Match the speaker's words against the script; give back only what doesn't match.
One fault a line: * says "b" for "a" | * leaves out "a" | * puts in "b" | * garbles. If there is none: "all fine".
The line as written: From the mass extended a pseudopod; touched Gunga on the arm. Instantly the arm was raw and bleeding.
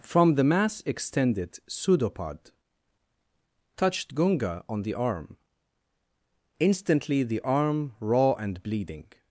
* leaves out "a"
* leaves out "was"